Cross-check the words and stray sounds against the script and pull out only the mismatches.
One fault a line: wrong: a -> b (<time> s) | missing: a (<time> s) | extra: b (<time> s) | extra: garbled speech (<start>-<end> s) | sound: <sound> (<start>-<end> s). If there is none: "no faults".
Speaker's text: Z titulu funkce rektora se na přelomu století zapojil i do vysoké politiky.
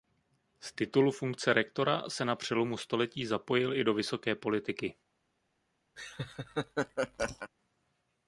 sound: laugh (6.0-7.5 s)